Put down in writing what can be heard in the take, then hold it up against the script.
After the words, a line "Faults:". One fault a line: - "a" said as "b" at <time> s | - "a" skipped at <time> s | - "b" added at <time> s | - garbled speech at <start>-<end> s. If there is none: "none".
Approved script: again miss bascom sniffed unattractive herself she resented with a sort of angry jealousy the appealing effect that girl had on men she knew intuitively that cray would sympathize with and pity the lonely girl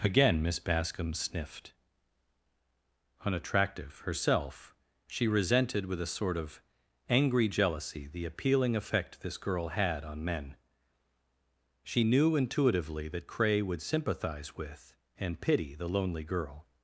again miss bascom sniffed unattractive herself she resented with a sort of angry jealousy the appealing effect this girl had on men she knew intuitively that cray would sympathize with and pity the lonely girl
Faults:
- "that" said as "this" at 9.2 s